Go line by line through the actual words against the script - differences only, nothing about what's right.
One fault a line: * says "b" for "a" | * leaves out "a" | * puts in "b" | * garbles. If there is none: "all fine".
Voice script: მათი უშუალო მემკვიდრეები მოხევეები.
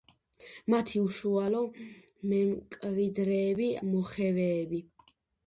all fine